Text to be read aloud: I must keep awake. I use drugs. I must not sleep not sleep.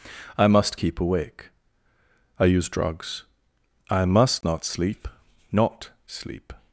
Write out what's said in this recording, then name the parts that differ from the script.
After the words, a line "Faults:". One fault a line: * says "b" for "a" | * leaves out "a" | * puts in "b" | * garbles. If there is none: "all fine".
I must keep awake. I use drugs. I must not sleep not sleep.
Faults:
all fine